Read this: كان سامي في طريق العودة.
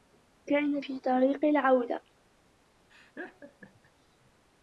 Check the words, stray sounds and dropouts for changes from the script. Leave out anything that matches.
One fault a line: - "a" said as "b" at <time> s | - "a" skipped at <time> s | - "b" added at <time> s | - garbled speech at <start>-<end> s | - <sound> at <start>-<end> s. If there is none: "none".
- "سامي" skipped at 0.8 s
- laugh at 2.9-3.9 s